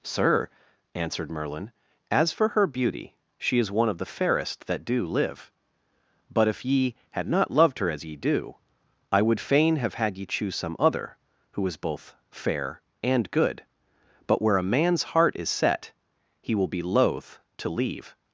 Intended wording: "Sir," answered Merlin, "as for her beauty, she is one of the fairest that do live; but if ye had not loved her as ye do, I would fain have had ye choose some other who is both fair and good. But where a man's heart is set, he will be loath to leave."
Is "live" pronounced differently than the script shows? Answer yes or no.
no